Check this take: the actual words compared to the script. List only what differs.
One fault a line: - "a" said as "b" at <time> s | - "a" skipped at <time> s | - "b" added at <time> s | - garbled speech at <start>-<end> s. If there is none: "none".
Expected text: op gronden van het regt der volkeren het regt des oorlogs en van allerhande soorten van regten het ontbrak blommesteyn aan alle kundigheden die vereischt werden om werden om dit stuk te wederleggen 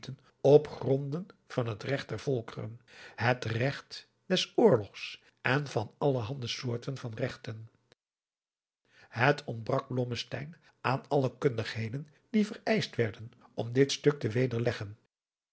- "werden om" skipped at 13.7 s